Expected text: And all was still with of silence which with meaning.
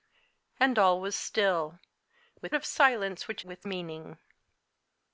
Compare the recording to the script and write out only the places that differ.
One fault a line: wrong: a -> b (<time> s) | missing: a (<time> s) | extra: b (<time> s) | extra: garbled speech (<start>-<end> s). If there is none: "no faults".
no faults